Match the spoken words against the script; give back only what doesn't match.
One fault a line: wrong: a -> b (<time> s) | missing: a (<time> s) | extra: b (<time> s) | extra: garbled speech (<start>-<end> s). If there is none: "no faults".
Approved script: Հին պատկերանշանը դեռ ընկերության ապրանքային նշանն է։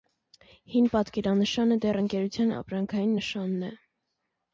no faults